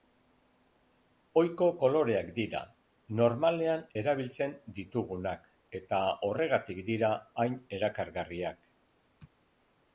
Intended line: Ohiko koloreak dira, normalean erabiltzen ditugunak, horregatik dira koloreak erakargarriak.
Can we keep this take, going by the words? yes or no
no